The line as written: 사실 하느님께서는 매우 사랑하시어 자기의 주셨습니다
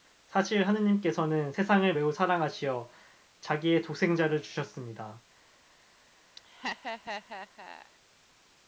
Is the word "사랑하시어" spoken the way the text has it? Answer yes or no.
yes